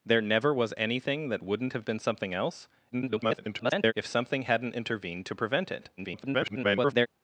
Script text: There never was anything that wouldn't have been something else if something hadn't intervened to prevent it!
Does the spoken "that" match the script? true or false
true